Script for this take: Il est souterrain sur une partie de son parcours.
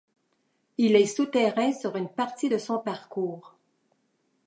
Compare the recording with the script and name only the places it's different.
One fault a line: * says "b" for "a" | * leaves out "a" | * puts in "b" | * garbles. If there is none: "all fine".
all fine